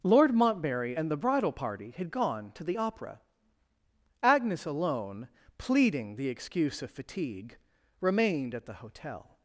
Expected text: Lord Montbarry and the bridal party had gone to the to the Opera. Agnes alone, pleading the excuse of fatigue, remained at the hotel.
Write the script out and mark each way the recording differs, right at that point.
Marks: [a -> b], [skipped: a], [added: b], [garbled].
Lord Montbarry and the bridal party had gone to the [skipped: to the] Opera. Agnes alone, pleading the excuse of fatigue, remained at the hotel.